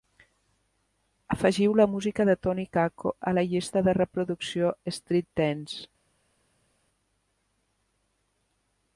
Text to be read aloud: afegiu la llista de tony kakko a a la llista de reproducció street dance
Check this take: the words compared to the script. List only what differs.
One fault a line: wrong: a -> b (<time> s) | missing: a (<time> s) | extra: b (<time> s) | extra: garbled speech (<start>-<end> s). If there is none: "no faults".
wrong: llista -> música (1.9 s)
missing: a (3.4 s)